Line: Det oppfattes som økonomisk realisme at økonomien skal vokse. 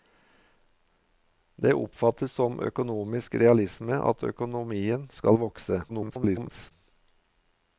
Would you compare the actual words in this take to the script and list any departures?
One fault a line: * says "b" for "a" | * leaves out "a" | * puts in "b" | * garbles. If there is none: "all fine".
* garbles